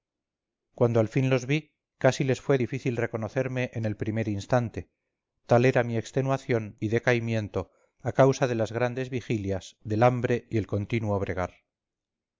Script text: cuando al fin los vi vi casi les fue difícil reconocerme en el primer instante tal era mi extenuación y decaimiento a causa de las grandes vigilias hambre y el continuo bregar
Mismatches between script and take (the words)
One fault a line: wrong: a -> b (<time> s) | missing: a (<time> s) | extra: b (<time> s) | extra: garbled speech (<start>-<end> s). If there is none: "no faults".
missing: vi (1.8 s)
extra: del (9.8 s)